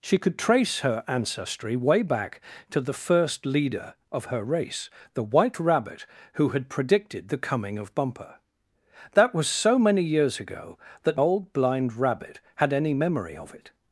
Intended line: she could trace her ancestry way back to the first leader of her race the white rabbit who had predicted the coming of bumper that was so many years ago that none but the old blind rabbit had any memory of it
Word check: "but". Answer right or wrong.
wrong